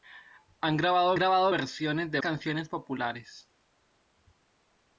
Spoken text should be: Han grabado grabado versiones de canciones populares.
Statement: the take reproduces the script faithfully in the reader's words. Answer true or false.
true